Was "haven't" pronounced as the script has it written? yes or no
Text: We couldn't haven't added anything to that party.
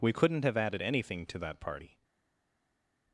no